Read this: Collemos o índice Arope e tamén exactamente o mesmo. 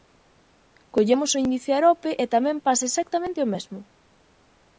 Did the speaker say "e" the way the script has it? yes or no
yes